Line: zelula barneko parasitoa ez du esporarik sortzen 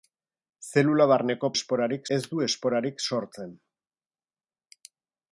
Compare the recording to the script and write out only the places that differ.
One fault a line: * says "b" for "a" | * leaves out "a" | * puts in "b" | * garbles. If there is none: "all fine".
* says "esporarik" for "parasitoa"